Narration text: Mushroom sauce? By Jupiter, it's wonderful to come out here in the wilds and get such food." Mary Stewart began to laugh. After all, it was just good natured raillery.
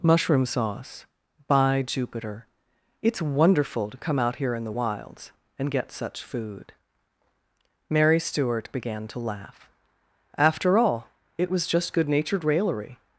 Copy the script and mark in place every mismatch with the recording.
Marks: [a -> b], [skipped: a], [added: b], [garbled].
Mushroom sauce? By Jupiter, it's wonderful to come out here in the wilds and get such food." Mary Stewart began to laugh. After all, it was just good natured raillery.